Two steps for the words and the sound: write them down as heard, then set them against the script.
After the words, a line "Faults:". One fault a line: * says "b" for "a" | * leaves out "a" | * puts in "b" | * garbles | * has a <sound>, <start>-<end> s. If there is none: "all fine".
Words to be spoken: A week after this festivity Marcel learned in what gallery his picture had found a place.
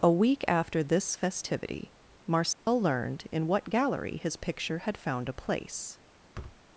A week after this festivity Marcel learned in what gallery his picture had found a place.
Faults:
* has a dropout, 2.5-2.7 s
* has a thud, 6.3-6.6 s